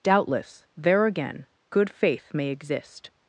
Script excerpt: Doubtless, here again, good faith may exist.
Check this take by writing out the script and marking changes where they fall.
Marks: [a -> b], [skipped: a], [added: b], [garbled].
Doubtless, [here -> there] again, good faith may exist.